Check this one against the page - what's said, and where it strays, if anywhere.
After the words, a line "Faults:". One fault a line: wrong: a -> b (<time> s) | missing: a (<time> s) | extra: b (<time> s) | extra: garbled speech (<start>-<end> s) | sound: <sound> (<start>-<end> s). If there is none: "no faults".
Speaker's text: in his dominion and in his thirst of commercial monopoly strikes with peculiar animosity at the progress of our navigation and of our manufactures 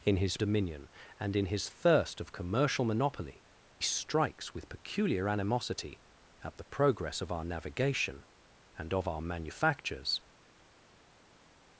in his dominion and in his thirst of commercial monopoly strikes with peculiar animosity at the progress of our navigation and of our manufactures
Faults:
no faults